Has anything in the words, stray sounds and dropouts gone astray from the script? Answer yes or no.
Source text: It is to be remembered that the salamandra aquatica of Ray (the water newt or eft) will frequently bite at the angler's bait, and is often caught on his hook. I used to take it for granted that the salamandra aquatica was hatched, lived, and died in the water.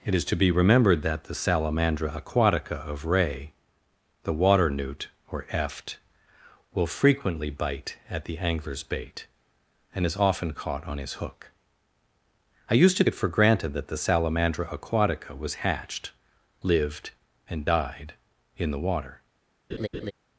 yes